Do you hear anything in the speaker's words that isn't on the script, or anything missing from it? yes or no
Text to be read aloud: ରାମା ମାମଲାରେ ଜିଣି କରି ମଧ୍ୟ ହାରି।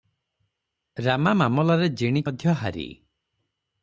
yes